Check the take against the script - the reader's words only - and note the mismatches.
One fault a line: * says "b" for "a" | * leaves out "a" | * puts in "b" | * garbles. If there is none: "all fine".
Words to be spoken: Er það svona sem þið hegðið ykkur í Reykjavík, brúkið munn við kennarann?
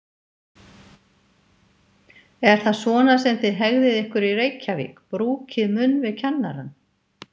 all fine